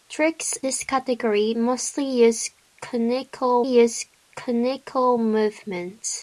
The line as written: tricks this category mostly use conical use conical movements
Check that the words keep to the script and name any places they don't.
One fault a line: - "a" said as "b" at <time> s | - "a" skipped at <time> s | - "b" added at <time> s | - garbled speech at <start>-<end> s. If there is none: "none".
none